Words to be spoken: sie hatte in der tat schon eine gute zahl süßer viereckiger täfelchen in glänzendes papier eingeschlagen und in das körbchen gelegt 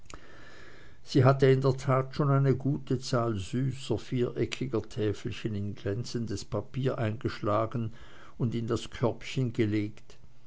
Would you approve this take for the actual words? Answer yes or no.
yes